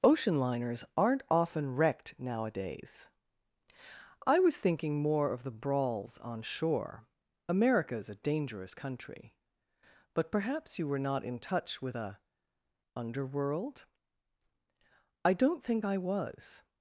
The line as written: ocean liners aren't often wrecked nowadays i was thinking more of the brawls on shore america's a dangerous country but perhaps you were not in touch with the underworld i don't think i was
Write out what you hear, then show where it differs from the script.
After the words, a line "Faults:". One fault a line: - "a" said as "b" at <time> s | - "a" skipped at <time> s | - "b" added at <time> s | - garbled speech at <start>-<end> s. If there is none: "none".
ocean liners aren't often wrecked nowadays i was thinking more of the brawls on shore america's a dangerous country but perhaps you were not in touch with a underworld i don't think i was
Faults:
- "the" said as "a" at 12.0 s